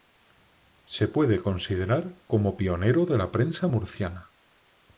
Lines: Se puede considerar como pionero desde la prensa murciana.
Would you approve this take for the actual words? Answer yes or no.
no